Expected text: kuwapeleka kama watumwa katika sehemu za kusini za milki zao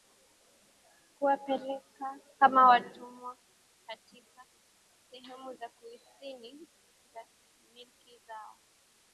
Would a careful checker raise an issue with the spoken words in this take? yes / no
no